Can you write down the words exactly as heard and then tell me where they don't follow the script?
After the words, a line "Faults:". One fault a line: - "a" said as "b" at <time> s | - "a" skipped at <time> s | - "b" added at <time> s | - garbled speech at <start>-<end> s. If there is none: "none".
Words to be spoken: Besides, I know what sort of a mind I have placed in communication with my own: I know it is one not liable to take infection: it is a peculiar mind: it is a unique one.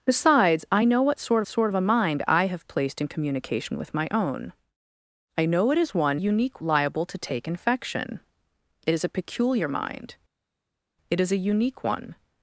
Besides, I know what sort sort of a mind I have placed in communication with my own: I know it is one unique liable to take infection: it is a peculiar mind: it is a unique one.
Faults:
- "sort" added at 1.5 s
- "not" said as "unique" at 6.1 s